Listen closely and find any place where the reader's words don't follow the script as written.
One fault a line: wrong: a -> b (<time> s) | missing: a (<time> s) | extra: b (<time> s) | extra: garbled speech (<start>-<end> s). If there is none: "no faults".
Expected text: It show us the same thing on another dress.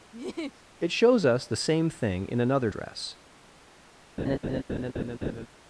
wrong: show -> shows (0.9 s)
wrong: on -> in (2.3 s)